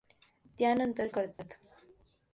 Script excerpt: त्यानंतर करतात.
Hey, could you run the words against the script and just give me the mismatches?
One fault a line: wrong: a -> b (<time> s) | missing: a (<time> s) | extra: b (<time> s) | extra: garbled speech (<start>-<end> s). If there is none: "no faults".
no faults